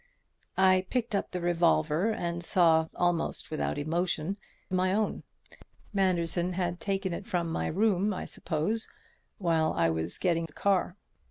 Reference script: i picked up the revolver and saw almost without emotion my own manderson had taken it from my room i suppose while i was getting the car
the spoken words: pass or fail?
pass